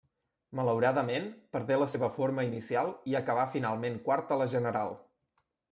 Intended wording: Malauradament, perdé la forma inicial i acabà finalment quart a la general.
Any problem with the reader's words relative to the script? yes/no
yes